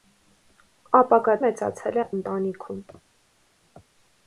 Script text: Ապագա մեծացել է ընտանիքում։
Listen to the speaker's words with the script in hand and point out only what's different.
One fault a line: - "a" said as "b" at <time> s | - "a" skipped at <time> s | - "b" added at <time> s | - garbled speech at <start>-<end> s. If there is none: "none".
none